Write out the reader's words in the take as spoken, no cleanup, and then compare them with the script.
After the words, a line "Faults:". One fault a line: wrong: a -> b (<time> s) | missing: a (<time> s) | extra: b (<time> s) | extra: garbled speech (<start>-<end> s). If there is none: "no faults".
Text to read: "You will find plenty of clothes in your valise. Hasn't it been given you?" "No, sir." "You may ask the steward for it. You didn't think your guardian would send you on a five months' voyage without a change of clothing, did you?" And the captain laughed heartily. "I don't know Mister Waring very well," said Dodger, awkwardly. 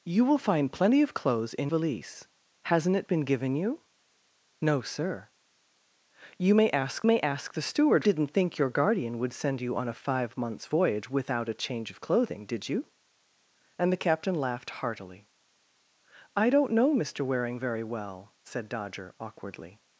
"You will find plenty of clothes in valise. Hasn't it been given you?" "No, sir." "You may ask may ask the steward didn't think your guardian would send you on a five months' voyage without a change of clothing, did you?" And the captain laughed heartily. "I don't know Mister Waring very well," said Dodger, awkwardly.
Faults:
missing: your (1.7 s)
extra: may ask (7.1 s)
missing: for it You (8.1 s)